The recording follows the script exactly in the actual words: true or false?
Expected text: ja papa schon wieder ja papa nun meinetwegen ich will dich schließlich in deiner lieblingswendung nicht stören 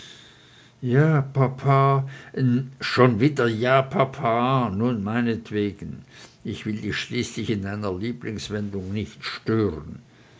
true